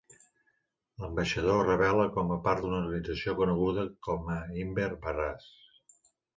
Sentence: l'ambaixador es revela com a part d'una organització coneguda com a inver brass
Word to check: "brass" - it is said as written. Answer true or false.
true